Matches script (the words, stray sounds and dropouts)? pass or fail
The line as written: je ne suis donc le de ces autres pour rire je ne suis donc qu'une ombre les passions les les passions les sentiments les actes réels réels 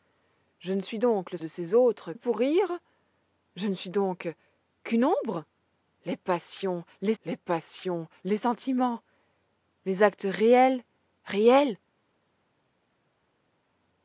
pass